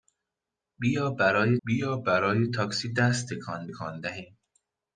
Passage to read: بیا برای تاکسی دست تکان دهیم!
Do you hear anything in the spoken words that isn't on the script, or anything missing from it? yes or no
yes